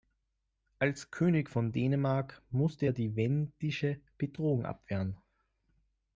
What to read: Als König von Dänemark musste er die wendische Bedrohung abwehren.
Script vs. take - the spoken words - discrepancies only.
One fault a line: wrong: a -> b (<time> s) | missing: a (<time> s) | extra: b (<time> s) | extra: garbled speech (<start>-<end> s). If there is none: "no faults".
no faults